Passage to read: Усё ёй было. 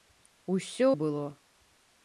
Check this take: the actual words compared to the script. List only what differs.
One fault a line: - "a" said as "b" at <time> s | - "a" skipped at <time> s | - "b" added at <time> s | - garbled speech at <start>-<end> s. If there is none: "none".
none